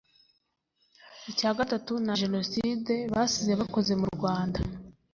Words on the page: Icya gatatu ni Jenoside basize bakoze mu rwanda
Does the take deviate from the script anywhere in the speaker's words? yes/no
no